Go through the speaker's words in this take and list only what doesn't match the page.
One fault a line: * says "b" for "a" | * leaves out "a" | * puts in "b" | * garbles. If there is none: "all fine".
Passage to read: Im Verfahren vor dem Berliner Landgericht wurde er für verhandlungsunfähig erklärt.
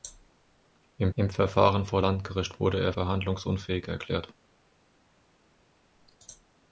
* puts in "im"
* leaves out "dem Berliner"
* leaves out "für"